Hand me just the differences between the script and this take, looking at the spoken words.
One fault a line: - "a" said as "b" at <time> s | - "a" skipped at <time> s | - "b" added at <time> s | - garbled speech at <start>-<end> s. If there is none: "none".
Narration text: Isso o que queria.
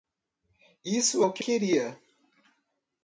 none